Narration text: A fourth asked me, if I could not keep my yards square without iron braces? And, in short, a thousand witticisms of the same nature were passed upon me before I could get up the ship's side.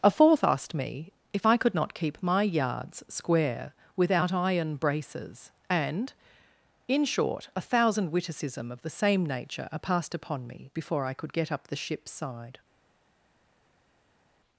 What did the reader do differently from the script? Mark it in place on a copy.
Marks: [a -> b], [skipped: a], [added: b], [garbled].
A fourth asked me, if I could not keep my yards square without iron braces? And, in short, a thousand [witticisms -> witticism] of the same nature [were -> are] passed upon me before I could get up the ship's side.